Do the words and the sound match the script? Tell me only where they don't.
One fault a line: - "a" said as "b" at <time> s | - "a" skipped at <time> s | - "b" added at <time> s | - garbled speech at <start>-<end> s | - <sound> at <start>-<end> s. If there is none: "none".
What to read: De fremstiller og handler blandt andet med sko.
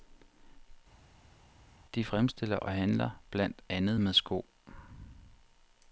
none